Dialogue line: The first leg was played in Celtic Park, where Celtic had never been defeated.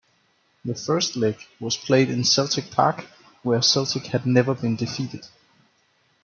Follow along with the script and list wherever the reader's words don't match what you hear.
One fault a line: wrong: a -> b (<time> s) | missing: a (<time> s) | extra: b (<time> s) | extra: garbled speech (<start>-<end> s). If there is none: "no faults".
no faults